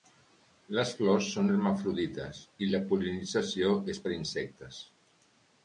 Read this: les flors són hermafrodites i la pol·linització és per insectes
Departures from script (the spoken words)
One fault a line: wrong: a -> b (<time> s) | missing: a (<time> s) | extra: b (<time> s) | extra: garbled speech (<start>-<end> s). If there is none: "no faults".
no faults